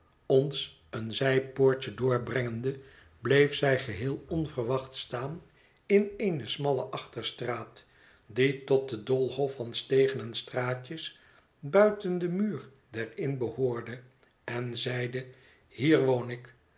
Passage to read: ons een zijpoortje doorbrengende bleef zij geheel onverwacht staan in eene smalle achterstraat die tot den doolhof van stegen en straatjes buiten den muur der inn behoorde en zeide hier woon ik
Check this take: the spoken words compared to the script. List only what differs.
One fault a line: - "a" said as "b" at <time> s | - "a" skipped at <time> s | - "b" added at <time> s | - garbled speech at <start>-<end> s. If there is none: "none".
none